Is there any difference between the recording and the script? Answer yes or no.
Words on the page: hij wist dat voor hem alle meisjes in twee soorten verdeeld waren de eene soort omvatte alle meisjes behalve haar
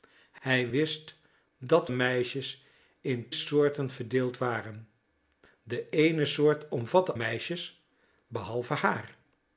yes